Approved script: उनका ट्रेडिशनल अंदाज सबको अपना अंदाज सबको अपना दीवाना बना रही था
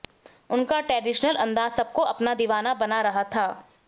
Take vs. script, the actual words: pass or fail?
fail